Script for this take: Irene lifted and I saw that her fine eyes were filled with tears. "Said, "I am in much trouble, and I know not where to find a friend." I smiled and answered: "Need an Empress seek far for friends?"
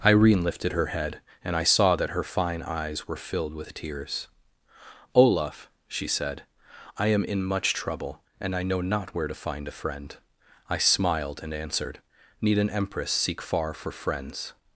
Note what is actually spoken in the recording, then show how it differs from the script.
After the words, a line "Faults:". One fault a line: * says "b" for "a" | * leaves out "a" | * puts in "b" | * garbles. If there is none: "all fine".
Irene lifted her head, and I saw that her fine eyes were filled with tears. "Olaf," she said, "I am in much trouble, and I know not where to find a friend." I smiled and answered: "Need an Empress seek far for friends?"
Faults:
* puts in "her head"
* puts in "Olaf she"